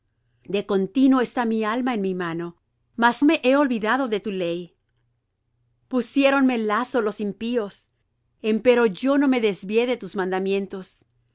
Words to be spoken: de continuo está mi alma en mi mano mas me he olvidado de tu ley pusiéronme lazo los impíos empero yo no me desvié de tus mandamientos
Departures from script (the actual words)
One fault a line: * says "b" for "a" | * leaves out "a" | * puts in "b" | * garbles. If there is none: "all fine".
all fine